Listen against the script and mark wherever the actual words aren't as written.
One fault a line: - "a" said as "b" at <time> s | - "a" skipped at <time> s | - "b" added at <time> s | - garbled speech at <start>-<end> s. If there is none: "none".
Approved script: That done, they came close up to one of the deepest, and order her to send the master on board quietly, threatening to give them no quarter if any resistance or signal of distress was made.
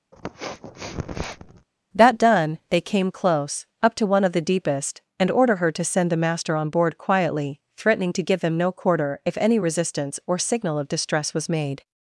none